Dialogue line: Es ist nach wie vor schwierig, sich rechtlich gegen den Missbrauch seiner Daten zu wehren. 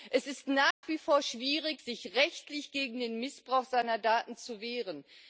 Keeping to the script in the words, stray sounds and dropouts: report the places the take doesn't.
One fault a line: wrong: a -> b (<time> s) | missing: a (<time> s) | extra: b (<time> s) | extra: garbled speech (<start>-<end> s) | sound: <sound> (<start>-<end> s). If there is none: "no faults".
sound: dropout (0.7-0.8 s)